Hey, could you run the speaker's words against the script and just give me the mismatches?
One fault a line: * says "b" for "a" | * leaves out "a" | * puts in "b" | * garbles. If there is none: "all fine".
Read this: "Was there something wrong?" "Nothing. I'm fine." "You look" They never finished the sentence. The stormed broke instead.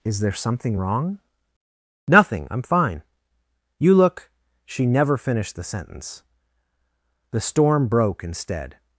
* says "Is" for "Was"
* says "She" for "They"
* says "storm" for "stormed"